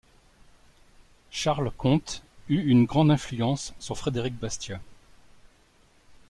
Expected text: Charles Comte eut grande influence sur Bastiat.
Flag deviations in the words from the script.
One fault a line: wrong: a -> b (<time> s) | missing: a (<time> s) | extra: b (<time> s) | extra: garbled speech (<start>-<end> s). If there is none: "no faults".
extra: une (2.7 s)
extra: Frédéric (4.0 s)